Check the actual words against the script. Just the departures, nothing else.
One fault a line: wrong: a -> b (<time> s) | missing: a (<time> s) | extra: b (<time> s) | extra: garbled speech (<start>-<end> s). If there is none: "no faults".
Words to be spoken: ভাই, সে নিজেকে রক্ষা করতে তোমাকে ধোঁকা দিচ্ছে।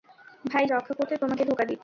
missing: সে নিজেকে (0.7 s)